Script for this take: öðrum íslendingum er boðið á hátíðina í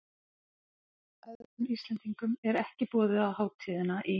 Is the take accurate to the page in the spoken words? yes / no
no